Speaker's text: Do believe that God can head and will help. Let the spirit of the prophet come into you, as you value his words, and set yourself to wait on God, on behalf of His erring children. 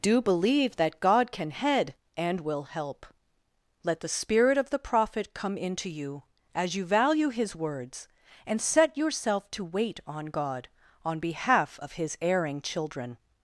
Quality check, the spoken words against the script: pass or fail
pass